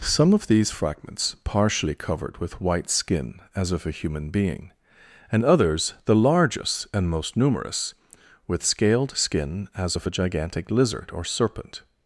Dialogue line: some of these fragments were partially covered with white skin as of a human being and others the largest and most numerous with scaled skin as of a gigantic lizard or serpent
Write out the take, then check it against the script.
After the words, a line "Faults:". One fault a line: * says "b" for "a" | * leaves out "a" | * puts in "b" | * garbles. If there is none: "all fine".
some of these fragments partially covered with white skin as of a human being and others the largest and most numerous with scaled skin as of a gigantic lizard or serpent
Faults:
* leaves out "were"